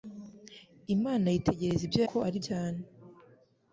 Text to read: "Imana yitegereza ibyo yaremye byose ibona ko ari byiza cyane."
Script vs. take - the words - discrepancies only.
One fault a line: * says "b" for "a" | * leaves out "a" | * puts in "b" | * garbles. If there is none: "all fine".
* leaves out "yaremye byose ibona"
* leaves out "byiza"